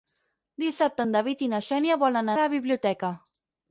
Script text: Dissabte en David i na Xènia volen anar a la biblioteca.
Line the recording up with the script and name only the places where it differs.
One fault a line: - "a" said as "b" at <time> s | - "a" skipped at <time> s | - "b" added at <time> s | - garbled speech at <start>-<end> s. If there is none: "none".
- "anar" skipped at 2.3 s